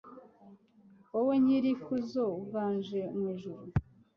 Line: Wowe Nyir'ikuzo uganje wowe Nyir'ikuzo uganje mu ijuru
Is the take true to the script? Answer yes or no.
no